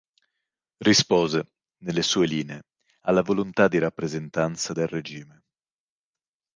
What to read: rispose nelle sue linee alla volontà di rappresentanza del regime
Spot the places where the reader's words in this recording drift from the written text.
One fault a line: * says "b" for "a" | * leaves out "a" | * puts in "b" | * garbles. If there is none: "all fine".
all fine